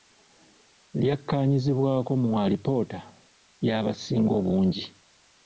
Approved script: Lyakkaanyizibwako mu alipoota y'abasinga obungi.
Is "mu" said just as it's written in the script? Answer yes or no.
yes